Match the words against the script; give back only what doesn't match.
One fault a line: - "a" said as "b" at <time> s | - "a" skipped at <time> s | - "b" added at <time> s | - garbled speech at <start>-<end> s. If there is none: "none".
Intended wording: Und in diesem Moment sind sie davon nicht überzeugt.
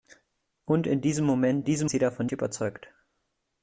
- "sind" said as "diesem" at 1.6 s
- "nicht" skipped at 2.3 s